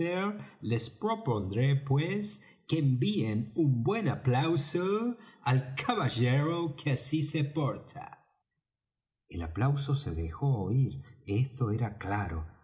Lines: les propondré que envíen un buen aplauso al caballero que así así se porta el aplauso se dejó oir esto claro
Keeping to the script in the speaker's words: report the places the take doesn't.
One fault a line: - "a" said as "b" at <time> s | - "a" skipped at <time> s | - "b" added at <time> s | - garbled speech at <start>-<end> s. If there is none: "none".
- "pues" added at 1.8 s
- "así" skipped at 7.2 s
- "era" added at 11.7 s